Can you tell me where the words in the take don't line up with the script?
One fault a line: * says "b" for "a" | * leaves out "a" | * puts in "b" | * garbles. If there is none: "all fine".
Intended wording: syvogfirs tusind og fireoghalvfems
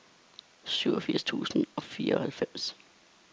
all fine